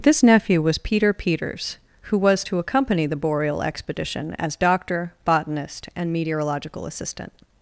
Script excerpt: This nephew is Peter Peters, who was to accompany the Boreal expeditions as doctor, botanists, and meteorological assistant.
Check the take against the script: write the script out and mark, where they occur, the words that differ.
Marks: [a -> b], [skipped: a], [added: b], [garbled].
This nephew [is -> was] Peter Peters, who was to accompany the Boreal [expeditions -> expedition] as doctor, [botanists, -> botanist] and meteorological assistant.